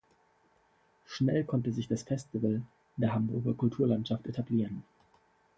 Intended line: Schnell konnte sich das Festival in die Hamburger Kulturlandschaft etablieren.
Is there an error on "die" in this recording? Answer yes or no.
yes